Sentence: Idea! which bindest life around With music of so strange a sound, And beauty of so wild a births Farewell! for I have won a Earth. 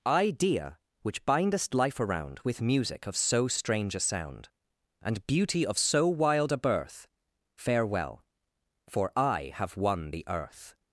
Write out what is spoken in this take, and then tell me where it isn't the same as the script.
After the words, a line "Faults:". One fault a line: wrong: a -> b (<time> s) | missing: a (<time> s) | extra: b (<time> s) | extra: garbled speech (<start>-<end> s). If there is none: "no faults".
Idea! which bindest life around With music of so strange a sound, And beauty of so wild a birth Farewell! for I have won the Earth.
Faults:
wrong: births -> birth (6.6 s)
wrong: a -> the (10.1 s)